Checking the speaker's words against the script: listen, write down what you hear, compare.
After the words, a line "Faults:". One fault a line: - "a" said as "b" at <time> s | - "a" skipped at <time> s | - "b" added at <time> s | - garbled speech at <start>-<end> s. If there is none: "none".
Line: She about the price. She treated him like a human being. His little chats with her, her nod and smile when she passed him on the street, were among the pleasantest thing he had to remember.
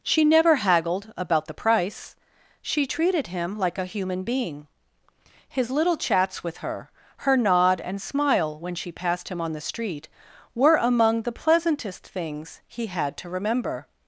She never haggled about the price. She treated him like a human being. His little chats with her, her nod and smile when she passed him on the street, were among the pleasantest things he had to remember.
Faults:
- "never haggled" added at 0.2 s
- "thing" said as "things" at 12.1 s